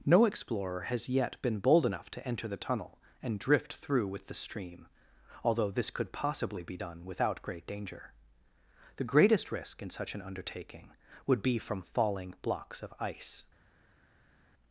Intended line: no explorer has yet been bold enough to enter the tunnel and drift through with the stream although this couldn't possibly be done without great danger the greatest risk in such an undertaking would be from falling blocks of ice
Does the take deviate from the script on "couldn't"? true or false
true